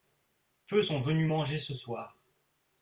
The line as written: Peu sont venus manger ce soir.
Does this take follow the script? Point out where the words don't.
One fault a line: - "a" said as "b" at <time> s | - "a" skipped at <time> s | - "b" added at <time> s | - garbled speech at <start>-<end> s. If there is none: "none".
none